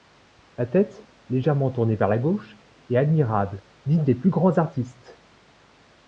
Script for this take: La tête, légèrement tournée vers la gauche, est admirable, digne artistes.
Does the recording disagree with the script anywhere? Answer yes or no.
yes